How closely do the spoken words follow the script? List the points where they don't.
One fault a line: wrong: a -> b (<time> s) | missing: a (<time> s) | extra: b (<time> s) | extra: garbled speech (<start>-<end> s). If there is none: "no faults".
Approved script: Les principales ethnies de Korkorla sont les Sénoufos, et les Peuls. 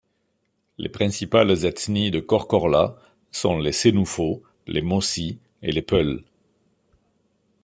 extra: les Mossis (4.7 s)